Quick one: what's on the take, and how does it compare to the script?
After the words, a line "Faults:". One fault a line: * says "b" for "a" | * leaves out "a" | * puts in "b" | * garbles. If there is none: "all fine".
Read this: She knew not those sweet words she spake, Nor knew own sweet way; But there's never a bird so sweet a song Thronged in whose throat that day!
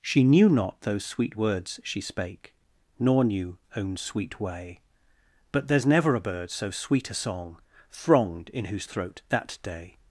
She knew not those sweet words she spake, Nor knew own sweet way; But there's never a bird so sweet a song Thronged in whose throat that day!
Faults:
all fine